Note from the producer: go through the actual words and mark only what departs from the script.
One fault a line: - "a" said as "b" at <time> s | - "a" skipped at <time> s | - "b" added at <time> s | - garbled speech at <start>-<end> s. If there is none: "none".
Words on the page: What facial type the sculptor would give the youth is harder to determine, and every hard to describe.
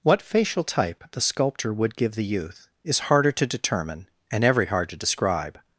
none